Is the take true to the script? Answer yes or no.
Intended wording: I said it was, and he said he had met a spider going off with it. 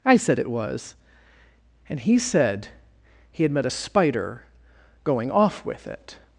yes